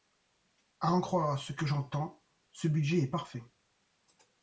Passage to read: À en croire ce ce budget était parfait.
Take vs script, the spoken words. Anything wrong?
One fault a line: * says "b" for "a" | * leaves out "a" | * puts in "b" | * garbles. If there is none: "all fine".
* puts in "que j'entends"
* says "est" for "était"